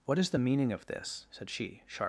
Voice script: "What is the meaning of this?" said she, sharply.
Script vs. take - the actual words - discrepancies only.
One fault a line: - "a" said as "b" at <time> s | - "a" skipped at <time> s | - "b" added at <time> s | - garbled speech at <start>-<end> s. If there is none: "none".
none